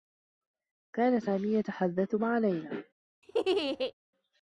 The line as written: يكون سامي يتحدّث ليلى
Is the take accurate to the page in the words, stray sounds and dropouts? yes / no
no